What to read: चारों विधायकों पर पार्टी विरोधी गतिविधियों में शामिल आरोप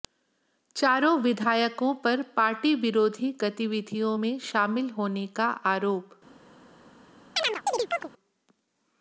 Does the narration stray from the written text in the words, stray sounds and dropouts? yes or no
yes